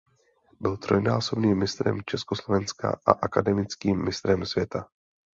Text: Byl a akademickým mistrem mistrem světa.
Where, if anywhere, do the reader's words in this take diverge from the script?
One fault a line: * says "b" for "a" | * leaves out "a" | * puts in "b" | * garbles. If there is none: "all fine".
* puts in "trojnásobným mistrem Československa"
* leaves out "mistrem"